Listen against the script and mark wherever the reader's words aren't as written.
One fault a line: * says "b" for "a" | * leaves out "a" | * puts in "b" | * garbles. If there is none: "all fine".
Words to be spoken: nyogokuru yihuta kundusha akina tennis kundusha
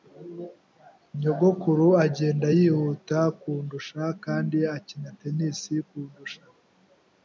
* puts in "agenda"
* puts in "kandi"